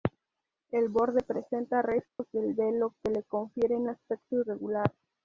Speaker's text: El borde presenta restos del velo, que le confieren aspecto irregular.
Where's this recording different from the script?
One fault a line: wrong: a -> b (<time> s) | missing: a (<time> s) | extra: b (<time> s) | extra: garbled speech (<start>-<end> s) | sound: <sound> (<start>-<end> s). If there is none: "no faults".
sound: dropout (2.1-2.2 s)